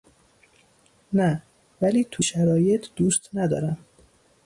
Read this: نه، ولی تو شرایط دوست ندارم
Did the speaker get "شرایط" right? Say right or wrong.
right